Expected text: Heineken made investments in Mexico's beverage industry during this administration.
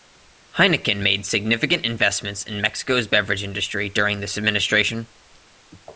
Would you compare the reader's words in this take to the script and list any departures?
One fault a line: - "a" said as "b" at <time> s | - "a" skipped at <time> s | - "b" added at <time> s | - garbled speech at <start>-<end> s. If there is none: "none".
- "significant" added at 1.3 s